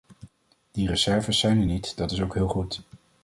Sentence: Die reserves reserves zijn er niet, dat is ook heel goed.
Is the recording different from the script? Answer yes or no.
yes